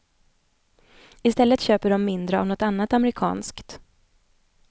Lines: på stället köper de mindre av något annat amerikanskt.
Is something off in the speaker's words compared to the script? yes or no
yes